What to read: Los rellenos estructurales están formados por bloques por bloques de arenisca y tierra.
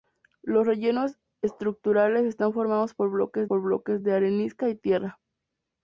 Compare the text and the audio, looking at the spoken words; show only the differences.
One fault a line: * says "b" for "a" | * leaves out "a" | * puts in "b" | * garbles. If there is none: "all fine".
all fine